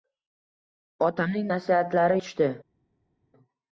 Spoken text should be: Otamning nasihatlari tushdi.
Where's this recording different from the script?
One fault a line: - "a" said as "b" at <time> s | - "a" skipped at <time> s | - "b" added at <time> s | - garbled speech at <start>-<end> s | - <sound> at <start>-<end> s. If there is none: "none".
none